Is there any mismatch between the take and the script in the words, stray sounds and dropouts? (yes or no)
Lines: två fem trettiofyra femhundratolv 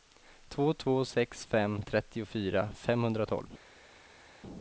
yes